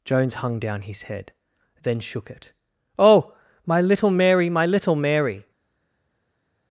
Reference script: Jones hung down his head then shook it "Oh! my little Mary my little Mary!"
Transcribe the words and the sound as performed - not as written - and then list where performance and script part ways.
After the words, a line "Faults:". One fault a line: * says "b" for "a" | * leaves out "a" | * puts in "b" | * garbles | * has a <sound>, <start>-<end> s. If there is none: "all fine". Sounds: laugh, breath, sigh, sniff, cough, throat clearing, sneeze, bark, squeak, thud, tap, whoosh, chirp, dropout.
Jones hung down his head then shook it "Oh! my little Mary my little Mary!"
Faults:
all fine